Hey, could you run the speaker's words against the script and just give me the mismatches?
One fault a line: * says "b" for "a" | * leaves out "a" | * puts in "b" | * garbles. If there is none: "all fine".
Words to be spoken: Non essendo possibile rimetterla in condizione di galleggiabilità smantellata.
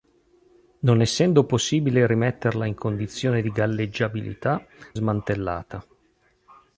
all fine